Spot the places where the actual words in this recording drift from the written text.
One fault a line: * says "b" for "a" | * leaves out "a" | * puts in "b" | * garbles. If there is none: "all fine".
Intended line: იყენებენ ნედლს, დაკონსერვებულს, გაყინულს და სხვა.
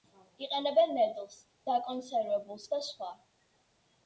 * leaves out "გაყინულს"